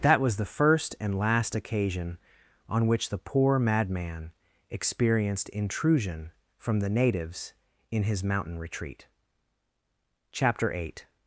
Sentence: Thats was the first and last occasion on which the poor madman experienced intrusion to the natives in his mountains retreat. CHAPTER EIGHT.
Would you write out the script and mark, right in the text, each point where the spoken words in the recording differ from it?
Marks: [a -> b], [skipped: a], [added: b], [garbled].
[Thats -> That] was the first and last occasion on which the poor madman experienced intrusion [to -> from] the natives in his [mountains -> mountain] retreat. CHAPTER EIGHT.